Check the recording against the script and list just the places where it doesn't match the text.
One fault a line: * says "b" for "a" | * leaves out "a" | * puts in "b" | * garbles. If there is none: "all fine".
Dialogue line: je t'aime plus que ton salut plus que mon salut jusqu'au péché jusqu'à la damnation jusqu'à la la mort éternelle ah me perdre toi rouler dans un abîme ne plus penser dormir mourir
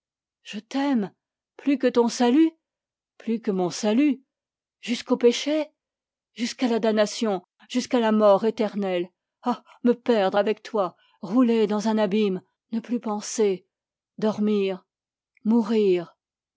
* leaves out "la"
* puts in "avec"